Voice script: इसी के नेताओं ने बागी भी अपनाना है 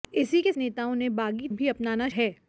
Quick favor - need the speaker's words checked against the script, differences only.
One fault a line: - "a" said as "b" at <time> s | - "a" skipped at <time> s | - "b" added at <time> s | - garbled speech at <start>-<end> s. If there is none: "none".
none